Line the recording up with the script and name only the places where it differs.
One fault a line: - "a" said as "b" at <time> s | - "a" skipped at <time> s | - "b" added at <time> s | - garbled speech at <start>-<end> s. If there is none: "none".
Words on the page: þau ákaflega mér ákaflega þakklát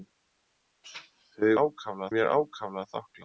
none